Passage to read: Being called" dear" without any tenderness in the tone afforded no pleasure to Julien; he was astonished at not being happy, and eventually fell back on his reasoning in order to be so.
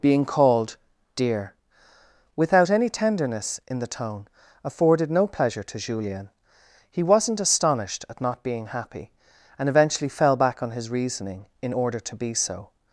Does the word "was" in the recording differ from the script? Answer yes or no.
yes